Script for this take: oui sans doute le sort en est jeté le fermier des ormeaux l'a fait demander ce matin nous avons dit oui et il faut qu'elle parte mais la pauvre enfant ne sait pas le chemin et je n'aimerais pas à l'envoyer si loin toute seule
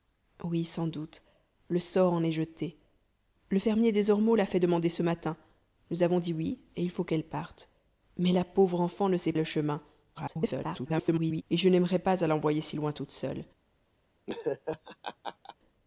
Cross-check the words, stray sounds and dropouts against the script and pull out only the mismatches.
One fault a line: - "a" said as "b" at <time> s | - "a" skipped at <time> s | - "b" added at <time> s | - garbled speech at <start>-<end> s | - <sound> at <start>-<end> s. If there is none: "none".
- "pas" skipped at 9.3 s
- garbled speech at 10.1-11.4 s
- laugh at 14.3-15.6 s